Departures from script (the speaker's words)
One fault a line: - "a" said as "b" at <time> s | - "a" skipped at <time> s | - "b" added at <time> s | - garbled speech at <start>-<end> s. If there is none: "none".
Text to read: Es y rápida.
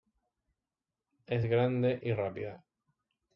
- "grande" added at 1.4 s